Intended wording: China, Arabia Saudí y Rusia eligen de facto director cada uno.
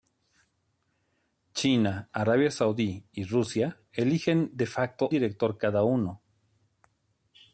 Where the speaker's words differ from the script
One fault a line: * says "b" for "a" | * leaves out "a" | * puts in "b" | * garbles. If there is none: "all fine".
all fine